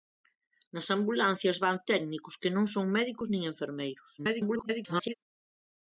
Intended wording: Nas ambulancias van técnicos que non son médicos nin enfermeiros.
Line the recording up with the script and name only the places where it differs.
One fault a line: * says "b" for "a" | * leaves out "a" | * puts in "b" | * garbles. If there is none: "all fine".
* garbles